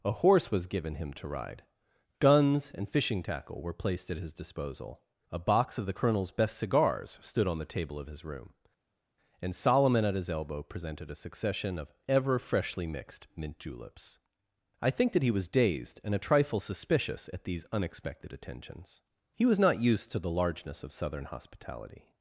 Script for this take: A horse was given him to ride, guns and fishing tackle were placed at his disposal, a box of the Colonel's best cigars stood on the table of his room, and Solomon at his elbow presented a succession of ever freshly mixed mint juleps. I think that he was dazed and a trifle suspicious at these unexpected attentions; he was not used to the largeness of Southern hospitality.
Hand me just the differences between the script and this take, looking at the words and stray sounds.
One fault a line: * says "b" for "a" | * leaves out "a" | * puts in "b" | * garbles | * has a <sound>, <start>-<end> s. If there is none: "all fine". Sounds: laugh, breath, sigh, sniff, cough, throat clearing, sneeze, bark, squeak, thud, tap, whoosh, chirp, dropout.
all fine